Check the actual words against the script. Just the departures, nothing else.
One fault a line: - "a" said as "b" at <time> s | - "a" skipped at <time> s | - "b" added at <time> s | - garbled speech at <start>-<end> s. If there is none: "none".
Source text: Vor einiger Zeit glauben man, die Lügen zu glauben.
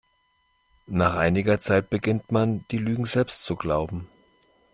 - "Vor" said as "Nach" at 0.9 s
- "glauben" said as "beginnt" at 1.9 s
- "selbst" added at 3.0 s